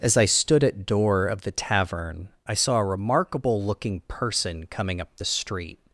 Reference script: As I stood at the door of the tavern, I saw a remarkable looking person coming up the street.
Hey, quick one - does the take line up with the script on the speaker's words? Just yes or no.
no